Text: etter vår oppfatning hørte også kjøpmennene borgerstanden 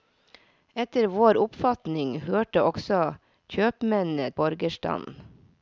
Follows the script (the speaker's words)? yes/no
yes